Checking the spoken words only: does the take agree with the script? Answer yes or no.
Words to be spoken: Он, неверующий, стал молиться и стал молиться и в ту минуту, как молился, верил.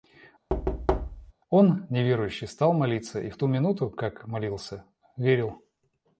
no